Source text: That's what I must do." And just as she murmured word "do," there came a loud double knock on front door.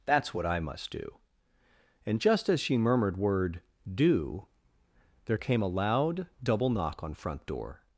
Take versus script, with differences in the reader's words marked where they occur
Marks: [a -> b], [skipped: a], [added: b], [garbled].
That's what I must do." And just as she murmured word "do," there came a loud double knock on front door.